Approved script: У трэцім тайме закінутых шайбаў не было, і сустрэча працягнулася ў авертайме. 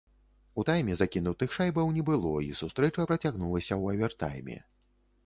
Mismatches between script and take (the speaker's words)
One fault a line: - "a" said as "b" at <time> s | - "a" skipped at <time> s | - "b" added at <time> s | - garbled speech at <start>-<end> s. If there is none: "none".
- "трэцім" skipped at 0.6 s